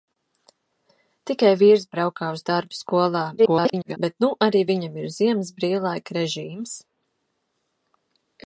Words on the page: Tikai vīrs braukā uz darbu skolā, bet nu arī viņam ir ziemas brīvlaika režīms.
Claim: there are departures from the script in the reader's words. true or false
true